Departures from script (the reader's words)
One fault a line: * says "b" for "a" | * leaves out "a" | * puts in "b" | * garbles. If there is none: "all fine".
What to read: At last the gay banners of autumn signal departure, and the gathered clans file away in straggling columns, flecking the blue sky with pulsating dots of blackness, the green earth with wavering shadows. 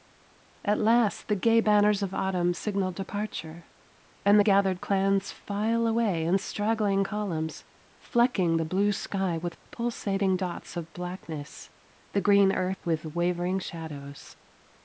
all fine